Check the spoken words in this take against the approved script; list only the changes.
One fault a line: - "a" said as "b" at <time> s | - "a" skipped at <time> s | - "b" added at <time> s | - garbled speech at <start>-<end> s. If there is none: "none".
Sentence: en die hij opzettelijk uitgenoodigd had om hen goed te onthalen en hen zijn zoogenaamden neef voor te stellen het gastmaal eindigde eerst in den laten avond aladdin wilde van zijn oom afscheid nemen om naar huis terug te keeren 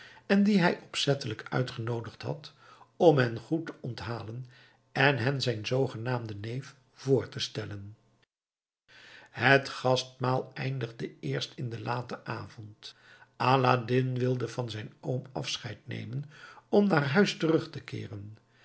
none